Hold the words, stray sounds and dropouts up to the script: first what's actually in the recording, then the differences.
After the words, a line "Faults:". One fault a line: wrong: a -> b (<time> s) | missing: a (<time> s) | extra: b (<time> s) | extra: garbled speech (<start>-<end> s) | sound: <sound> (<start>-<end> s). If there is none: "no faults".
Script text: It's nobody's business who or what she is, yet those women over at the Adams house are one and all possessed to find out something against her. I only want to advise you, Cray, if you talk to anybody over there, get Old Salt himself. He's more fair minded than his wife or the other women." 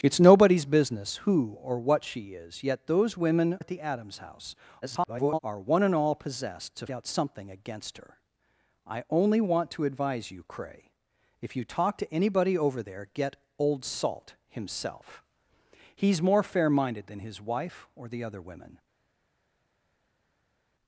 It's nobody's business who or what she is, yet those women at the Adams house [garbled] are one and all possessed to out something against her. I only want to advise you, Cray, if you talk to anybody over there, get Old Salt himself. He's more fair minded than his wife or the other women."
Faults:
missing: over (3.6 s)
extra: garbled speech (4.8-5.4 s)
missing: find (6.9 s)